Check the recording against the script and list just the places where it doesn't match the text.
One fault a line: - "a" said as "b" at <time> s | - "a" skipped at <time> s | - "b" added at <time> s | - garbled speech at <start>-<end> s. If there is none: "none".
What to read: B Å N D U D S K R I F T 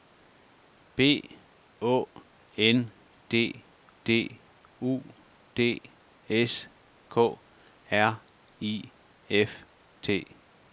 - "D" added at 4.0 s